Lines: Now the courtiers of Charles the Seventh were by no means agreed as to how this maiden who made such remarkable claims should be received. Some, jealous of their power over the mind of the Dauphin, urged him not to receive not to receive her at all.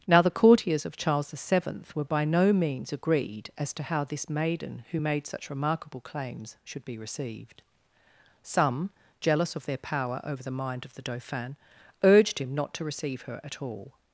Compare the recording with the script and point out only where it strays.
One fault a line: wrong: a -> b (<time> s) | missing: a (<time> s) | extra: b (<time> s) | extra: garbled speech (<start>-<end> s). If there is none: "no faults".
missing: not to receive (13.2 s)